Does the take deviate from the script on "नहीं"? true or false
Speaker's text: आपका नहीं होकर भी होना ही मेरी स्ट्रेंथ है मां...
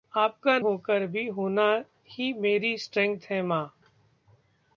true